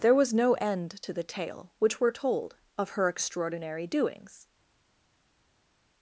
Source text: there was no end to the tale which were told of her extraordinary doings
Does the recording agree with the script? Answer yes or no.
yes